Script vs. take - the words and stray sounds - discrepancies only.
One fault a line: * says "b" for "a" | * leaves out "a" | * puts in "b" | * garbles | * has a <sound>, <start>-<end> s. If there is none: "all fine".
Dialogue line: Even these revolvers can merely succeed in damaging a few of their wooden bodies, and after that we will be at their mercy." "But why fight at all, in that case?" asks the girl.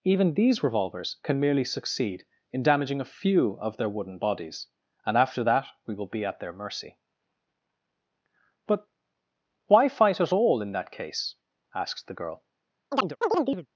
* has a chirp, 12.9-13.7 s